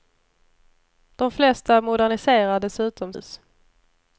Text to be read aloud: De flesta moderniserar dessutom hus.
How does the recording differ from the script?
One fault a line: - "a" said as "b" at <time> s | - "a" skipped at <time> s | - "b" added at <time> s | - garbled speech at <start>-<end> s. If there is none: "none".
none